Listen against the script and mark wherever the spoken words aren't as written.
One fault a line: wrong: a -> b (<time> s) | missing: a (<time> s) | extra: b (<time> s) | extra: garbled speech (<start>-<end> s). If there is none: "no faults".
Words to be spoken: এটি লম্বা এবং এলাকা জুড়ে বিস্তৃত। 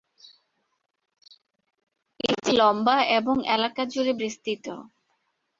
no faults